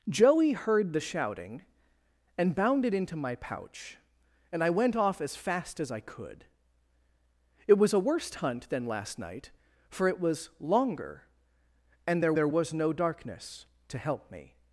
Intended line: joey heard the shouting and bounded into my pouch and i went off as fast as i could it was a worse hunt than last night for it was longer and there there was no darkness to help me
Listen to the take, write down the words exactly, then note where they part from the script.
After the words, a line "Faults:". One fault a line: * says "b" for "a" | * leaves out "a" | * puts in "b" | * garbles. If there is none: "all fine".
joey heard the shouting and bounded into my pouch and i went off as fast as i could it was a worse hunt than last night for it was longer and there there was no darkness to help me
Faults:
all fine